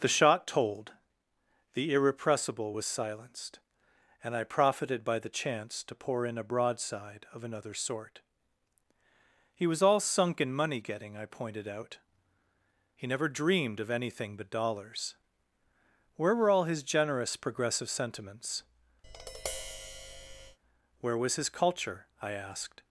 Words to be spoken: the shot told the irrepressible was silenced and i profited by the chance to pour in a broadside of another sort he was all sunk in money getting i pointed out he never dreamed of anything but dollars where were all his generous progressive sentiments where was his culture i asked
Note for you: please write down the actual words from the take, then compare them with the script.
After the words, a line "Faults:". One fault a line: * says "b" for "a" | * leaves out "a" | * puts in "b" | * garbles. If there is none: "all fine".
the shot told the irrepressible was silenced and i profited by the chance to pour in a broadside of another sort he was all sunk in money getting i pointed out he never dreamed of anything but dollars where were all his generous progressive sentiments where was his culture i asked
Faults:
all fine